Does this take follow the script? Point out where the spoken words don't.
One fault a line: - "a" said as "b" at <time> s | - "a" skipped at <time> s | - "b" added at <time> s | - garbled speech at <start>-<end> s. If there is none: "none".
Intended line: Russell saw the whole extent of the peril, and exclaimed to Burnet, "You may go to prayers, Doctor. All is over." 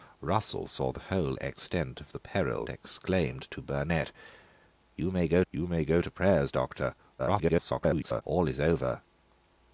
- "and" skipped at 2.7 s
- "you may go" added at 5.5 s
- garbled speech at 7.2-8.2 s